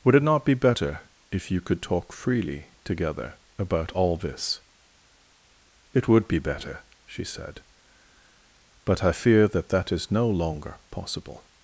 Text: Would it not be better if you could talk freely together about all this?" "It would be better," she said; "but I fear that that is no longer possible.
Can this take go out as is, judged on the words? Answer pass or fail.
pass